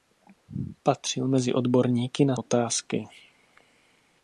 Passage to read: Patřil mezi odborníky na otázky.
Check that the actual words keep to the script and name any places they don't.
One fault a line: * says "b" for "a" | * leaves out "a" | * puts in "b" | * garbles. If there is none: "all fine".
all fine